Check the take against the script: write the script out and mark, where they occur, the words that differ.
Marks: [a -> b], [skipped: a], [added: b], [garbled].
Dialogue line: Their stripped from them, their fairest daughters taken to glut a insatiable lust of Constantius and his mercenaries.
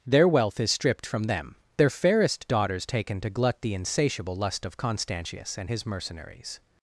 Their [added: wealth is] stripped from them, their fairest daughters taken to glut [a -> the] insatiable lust of Constantius and his mercenaries.